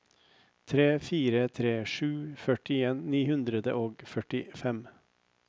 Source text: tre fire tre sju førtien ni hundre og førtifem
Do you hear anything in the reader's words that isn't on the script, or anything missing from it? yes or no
no